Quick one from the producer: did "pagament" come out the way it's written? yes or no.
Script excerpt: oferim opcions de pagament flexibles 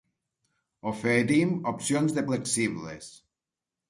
no